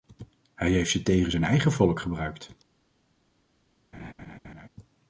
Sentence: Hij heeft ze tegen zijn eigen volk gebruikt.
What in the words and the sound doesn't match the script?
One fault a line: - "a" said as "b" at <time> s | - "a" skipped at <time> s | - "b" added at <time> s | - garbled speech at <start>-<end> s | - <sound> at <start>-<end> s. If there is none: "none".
- laugh at 3.9-4.7 s